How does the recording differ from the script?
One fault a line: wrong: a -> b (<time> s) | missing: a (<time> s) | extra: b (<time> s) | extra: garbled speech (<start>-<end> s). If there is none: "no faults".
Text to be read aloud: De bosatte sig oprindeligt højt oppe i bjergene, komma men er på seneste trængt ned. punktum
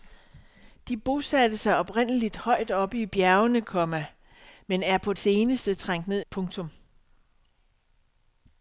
no faults